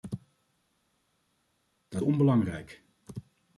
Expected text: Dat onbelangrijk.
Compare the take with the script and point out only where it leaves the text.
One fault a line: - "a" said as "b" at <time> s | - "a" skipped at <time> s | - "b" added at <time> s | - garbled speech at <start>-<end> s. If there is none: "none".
none